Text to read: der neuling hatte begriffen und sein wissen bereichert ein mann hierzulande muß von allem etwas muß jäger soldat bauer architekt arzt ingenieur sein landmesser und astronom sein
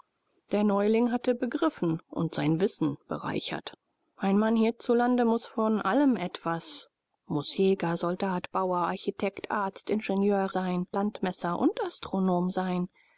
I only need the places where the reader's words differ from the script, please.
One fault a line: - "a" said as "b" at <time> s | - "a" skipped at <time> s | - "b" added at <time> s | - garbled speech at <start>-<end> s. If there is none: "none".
none